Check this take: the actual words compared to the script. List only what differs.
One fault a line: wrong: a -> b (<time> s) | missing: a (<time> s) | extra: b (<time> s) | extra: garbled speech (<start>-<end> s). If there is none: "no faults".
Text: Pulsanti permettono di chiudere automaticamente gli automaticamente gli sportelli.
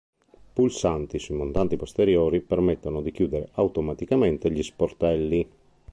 extra: sui montanti posteriori (1.2 s)
missing: automaticamente gli (4.6 s)